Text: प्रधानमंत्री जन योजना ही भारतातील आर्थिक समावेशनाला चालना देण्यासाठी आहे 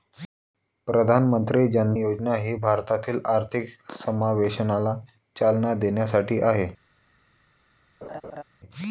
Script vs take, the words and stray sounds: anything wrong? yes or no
yes